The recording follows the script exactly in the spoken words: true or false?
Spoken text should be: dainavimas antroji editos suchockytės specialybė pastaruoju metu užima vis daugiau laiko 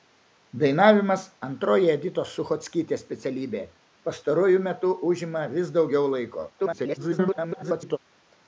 false